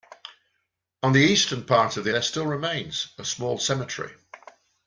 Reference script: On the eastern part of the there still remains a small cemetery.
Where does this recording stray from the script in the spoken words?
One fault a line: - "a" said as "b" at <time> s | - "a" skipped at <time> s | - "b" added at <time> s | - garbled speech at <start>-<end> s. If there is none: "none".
none